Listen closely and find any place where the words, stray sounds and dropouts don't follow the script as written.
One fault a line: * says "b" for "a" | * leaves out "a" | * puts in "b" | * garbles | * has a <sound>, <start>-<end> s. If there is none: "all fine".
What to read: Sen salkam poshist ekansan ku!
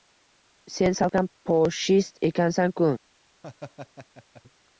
* has a laugh, 3.4-4.4 s